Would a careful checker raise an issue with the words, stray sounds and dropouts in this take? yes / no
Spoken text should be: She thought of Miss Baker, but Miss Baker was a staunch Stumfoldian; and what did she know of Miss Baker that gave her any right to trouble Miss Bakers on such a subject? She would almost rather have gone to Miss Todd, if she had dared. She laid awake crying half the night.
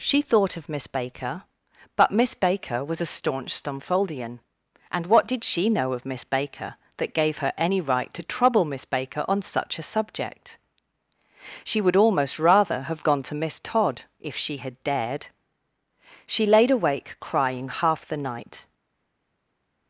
yes